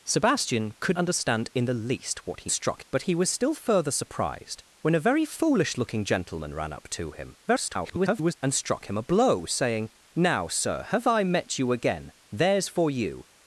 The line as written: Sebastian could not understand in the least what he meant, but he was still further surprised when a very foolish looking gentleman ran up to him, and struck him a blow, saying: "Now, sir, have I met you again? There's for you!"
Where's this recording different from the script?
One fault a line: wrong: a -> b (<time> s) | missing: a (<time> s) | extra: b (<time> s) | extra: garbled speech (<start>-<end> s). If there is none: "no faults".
missing: not (1.0 s)
wrong: meant -> struck (2.5 s)
extra: garbled speech (7.5-8.3 s)